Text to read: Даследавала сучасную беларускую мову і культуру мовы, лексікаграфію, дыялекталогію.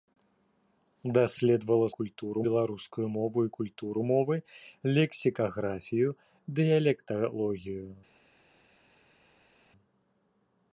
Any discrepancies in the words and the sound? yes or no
yes